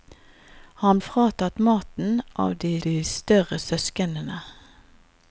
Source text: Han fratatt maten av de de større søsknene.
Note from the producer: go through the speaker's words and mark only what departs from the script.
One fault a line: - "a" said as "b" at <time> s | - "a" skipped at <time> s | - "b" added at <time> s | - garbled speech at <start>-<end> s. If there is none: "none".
none